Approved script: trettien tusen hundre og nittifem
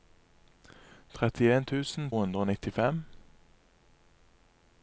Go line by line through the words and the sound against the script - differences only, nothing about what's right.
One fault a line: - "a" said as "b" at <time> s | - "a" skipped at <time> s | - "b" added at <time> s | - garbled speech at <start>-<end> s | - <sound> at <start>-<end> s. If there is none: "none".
none